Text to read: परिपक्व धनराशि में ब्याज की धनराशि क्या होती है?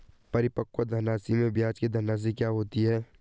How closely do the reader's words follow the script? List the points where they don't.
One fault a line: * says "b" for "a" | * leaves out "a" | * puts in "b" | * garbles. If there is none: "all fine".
all fine